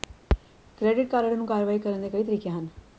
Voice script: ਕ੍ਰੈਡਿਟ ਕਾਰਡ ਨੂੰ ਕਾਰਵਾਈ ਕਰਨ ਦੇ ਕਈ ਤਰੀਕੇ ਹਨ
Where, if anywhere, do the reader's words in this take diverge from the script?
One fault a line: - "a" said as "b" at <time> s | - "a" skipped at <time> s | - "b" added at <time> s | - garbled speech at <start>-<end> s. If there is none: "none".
none